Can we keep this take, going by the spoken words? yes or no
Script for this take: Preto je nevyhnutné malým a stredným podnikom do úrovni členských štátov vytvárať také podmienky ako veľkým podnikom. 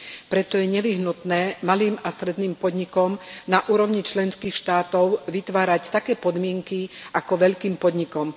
no